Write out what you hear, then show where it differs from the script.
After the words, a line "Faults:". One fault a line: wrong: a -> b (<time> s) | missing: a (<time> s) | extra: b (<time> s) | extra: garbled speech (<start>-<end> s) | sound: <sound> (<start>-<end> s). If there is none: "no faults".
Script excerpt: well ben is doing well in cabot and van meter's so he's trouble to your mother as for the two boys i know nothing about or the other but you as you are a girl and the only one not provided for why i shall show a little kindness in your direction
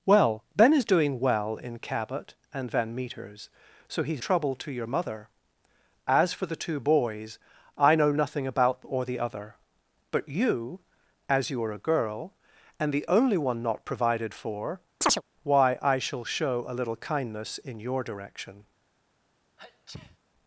well ben is doing well in cabot and van meter's so he's trouble to your mother as for the two boys i know nothing about or the other but you as you are a girl and the only one not provided for why i shall show a little kindness in your direction
Faults:
sound: chirp (15.0-15.2 s)
sound: sneeze (19.6-20.2 s)